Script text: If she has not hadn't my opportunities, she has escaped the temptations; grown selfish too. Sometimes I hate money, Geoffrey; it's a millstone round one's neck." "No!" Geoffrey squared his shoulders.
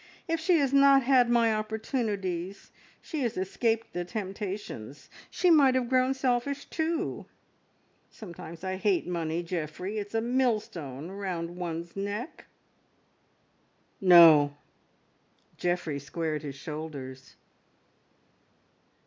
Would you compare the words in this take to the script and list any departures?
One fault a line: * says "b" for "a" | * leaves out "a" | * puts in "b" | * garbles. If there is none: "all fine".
* says "had" for "hadn't"
* puts in "she might have"